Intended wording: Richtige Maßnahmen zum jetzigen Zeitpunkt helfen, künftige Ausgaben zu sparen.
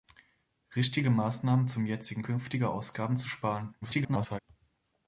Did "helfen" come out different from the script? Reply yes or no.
yes